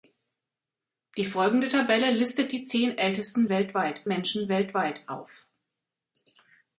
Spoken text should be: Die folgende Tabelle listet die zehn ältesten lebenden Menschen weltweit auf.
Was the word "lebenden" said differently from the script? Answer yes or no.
yes